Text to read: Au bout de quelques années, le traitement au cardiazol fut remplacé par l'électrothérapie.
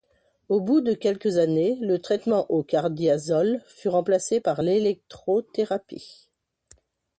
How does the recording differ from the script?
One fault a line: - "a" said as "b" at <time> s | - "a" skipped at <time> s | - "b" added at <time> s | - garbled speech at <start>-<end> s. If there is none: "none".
none